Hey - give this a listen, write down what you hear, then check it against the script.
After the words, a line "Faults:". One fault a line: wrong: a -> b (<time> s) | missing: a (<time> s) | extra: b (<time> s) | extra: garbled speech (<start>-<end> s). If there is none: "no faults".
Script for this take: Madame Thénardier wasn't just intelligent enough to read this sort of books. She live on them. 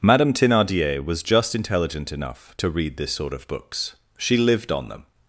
Madame Thénardier was just intelligent enough to read this sort of books. She lived on them.
Faults:
wrong: wasn't -> was (1.1 s)
wrong: live -> lived (4.4 s)